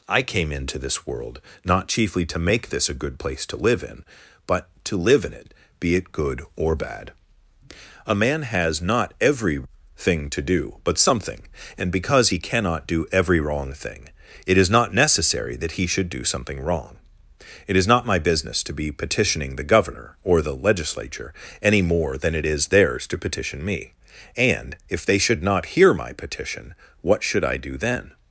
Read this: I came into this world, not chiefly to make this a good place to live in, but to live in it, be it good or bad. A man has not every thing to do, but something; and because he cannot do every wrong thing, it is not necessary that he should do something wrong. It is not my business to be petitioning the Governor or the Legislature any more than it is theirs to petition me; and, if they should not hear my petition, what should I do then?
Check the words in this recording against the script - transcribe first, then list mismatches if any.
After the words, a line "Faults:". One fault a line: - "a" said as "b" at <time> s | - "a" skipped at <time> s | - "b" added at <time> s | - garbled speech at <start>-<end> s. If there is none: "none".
I came into this world, not chiefly to make this a good place to live in, but to live in it, be it good or bad. A man has not every thing to do, but something; and because he cannot do every wrong thing, it is not necessary that he should do something wrong. It is not my business to be petitioning the Governor or the Legislature any more than it is theirs to petition me; and, if they should not hear my petition, what should I do then?
Faults:
none